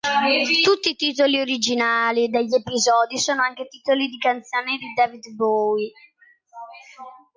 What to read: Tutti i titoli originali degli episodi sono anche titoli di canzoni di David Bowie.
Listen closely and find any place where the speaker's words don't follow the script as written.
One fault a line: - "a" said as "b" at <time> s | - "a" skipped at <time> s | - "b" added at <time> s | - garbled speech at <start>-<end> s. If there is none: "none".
none